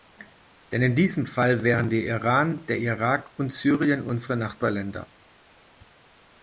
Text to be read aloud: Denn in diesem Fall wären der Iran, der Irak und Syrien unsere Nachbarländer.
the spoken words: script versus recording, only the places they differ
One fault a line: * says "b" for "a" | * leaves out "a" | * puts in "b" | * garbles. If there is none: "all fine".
all fine